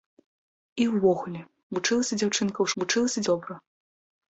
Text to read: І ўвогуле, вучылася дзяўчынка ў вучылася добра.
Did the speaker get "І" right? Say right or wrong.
right